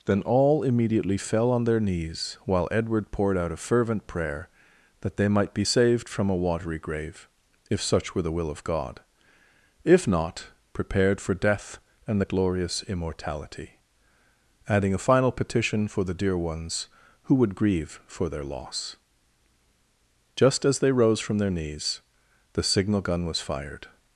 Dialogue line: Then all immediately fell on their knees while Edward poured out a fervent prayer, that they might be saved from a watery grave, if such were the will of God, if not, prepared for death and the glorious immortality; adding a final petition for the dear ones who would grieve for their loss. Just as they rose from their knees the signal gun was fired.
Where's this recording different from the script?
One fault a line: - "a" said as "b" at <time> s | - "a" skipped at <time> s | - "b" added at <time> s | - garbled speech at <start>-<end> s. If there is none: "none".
none